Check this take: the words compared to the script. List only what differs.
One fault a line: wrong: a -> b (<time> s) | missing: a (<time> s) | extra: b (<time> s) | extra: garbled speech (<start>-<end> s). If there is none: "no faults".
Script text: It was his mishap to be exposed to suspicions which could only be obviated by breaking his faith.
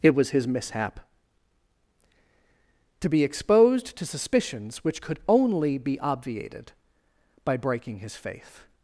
no faults